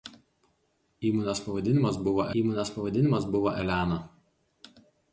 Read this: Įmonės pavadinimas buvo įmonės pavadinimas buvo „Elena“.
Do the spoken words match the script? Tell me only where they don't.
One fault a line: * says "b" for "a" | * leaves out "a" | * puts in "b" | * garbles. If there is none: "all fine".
all fine